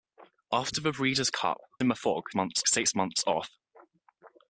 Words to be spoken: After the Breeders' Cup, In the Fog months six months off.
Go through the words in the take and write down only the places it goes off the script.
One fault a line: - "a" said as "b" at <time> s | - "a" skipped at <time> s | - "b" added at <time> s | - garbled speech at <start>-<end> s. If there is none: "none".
none